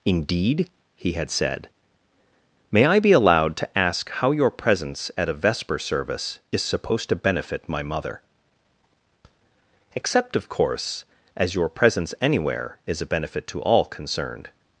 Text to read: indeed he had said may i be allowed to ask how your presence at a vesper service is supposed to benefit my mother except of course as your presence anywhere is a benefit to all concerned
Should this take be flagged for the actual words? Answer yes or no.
no